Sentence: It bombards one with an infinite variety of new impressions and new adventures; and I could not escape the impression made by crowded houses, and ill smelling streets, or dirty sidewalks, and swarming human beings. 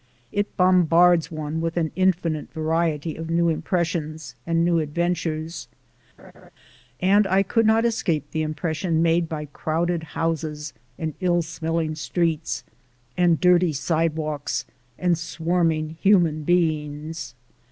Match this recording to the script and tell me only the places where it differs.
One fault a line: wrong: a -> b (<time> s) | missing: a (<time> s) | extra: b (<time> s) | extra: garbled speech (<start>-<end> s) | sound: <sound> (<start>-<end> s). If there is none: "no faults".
sound: laugh (6.2-6.5 s)
wrong: or -> and (13.2 s)